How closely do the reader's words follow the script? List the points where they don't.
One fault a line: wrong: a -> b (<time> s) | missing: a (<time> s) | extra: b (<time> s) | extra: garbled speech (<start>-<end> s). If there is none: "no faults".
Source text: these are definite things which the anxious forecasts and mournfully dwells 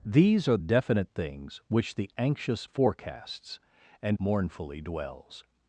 no faults